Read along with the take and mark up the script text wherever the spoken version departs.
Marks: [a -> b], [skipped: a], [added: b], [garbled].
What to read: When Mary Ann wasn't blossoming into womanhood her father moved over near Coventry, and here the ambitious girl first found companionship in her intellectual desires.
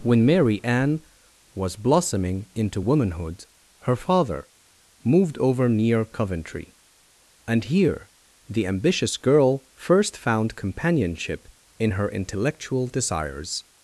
When Mary Ann [wasn't -> was] blossoming into womanhood her father moved over near Coventry, and here the ambitious girl first found companionship in her intellectual desires.